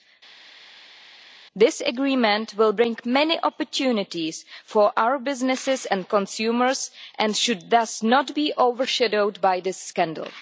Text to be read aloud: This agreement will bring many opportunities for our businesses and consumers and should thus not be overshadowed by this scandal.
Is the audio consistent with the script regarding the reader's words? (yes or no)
yes